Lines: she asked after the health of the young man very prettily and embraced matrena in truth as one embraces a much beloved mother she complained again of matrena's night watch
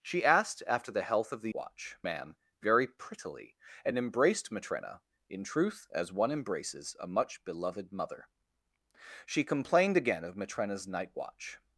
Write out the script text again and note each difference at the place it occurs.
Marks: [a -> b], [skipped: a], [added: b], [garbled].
she asked after the health of the [young -> watch] man very prettily and embraced matrena in truth as one embraces a much beloved mother she complained again of matrena's night watch